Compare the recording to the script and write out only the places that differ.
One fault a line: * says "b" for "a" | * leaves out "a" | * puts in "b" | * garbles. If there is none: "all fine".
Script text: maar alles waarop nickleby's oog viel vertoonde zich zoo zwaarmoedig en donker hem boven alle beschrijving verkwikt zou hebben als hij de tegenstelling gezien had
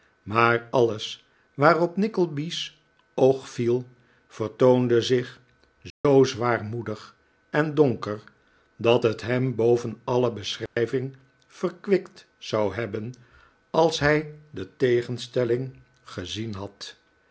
* puts in "dat het"